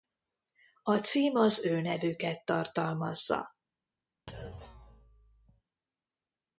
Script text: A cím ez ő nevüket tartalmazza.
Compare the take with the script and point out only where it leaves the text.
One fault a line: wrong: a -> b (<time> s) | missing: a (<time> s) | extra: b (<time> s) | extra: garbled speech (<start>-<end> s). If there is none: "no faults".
wrong: ez -> az (1.4 s)